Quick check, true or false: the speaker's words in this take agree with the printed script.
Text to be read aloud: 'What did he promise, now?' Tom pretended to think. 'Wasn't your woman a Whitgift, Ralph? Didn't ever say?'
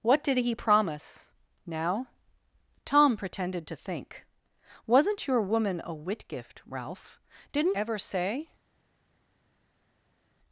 true